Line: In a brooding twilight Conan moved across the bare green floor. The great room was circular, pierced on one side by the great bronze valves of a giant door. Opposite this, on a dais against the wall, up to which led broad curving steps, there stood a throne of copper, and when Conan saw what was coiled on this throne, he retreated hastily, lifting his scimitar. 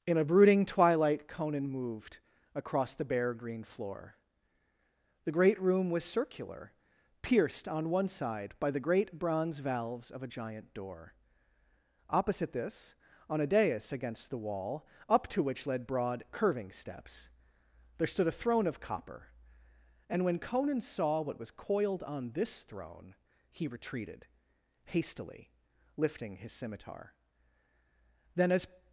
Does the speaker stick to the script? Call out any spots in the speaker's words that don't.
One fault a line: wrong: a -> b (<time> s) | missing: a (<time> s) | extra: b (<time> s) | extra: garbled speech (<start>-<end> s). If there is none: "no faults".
extra: Then as (28.3 s)